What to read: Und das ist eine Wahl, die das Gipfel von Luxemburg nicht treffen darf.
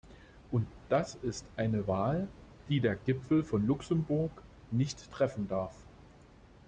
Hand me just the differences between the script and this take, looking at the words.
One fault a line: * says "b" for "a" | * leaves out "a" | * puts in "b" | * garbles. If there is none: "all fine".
* says "der" for "das"